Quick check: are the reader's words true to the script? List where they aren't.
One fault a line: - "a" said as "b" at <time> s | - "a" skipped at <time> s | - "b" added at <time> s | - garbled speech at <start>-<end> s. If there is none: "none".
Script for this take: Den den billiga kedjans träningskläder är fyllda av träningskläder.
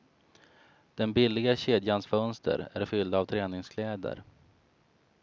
- "den" skipped at 1.1 s
- "träningskläder" said as "fönster" at 2.1 s